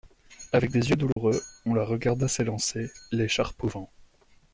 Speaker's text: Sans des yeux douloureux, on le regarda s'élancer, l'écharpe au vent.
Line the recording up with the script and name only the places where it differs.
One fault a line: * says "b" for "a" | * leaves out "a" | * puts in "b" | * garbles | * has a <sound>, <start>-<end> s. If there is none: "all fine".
* says "Avec" for "Sans"
* has a dropout, 1.1-1.2 s
* says "la" for "le"